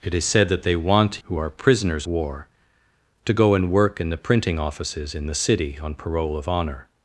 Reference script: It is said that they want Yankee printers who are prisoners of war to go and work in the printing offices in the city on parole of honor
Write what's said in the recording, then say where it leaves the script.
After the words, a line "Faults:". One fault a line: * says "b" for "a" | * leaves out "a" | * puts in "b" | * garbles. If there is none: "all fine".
It is said that they want Who are prisoners war to go and work in the printing offices in the city on parole of honor
Faults:
* leaves out "Yankee printers"
* leaves out "of"